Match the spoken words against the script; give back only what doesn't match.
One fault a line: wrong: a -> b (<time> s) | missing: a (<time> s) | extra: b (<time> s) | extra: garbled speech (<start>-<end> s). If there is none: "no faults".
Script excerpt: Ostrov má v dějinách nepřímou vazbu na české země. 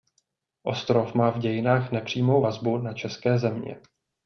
no faults